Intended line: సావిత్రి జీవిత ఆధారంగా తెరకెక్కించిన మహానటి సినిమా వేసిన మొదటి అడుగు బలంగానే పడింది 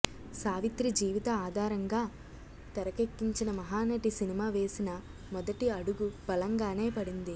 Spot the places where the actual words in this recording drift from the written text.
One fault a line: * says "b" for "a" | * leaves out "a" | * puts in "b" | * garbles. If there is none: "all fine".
all fine